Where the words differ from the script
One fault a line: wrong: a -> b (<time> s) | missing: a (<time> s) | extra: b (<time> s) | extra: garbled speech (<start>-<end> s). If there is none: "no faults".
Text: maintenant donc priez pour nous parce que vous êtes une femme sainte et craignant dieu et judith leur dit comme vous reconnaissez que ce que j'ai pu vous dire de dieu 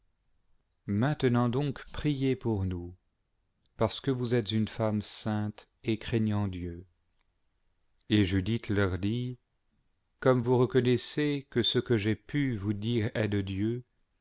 extra: est (13.2 s)